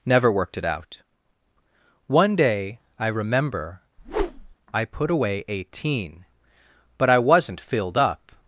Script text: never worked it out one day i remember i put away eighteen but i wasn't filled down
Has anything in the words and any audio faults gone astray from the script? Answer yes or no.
yes